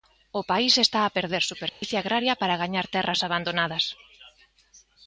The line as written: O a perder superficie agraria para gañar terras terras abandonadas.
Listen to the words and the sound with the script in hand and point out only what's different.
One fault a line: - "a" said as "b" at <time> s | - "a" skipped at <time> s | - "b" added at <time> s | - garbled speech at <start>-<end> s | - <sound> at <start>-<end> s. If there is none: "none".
- "país está" added at 0.5 s
- dropout at 1.7-1.8 s
- "terras" skipped at 3.2 s